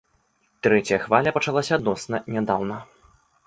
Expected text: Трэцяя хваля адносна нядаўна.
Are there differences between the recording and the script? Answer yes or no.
yes